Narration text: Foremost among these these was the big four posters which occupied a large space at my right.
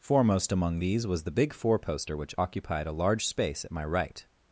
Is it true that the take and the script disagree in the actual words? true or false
true